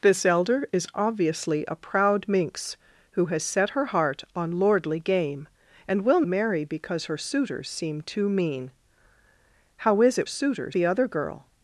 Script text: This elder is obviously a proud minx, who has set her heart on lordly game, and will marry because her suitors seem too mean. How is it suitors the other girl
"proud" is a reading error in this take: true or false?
false